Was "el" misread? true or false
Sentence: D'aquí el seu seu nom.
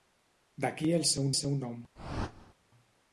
false